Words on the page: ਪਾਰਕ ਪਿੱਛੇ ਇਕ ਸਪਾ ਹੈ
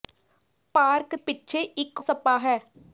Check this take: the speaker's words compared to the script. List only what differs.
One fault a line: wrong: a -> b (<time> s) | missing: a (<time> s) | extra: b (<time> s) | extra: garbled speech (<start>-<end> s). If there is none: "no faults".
no faults